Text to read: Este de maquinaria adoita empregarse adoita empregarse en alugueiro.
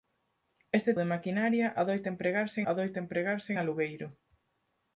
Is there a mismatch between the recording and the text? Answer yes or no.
no